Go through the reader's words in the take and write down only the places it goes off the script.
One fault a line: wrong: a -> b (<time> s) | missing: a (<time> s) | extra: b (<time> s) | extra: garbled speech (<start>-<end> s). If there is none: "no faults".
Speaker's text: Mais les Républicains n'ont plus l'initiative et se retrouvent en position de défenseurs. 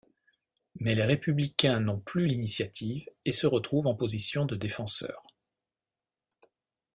no faults